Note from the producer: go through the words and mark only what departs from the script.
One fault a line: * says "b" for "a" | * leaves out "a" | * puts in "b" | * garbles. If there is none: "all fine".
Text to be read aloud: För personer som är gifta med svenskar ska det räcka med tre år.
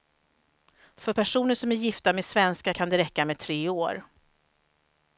* says "kan" for "ska"